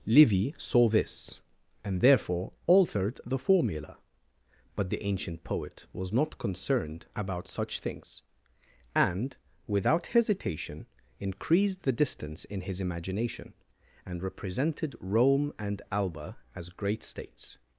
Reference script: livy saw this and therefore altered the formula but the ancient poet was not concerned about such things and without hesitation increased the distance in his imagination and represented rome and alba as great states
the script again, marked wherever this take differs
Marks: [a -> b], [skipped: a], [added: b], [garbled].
livy saw this and therefore altered the formula but the ancient poet was not concerned about such things and without hesitation increased the distance in his imagination and represented rome and alba as great states